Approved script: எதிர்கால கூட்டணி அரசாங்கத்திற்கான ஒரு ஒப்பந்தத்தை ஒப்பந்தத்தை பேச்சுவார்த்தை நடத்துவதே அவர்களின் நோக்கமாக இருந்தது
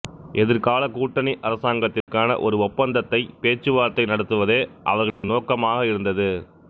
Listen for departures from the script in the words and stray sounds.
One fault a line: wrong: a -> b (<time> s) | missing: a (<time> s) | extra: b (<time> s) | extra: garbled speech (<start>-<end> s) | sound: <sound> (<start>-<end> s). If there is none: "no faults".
sound: dropout (2.0-2.1 s)
missing: ஒப்பந்தத்தை (3.2 s)
sound: dropout (5.1-5.2 s)